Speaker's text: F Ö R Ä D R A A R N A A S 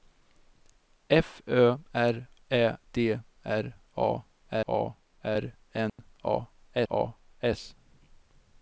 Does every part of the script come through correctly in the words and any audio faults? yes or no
no